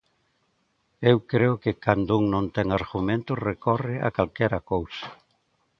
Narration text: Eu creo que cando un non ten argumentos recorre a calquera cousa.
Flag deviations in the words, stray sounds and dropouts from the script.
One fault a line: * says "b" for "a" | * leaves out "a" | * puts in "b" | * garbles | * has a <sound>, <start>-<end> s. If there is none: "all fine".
all fine